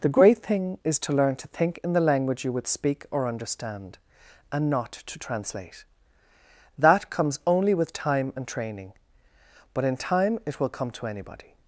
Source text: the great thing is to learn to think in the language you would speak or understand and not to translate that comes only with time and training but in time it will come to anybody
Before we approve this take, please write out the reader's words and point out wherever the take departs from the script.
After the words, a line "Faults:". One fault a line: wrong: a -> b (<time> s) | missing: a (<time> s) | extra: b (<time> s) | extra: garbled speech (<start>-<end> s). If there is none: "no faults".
the great thing is to learn to think in the language you would speak or understand and not to translate that comes only with time and training but in time it will come to anybody
Faults:
no faults